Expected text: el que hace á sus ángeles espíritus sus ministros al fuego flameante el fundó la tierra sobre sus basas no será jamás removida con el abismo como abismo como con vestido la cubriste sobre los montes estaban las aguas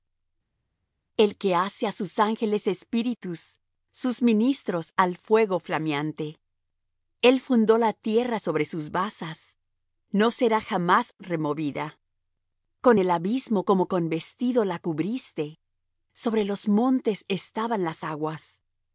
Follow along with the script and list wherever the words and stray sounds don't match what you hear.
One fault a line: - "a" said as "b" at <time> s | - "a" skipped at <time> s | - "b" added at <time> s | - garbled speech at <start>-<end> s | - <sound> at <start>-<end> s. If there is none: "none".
- "abismo como" skipped at 13.9 s